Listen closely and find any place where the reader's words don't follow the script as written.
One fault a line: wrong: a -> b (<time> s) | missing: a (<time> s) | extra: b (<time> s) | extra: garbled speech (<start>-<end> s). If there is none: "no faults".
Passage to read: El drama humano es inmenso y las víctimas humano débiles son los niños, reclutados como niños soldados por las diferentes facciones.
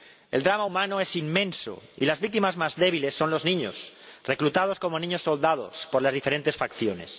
wrong: humano -> más (2.6 s)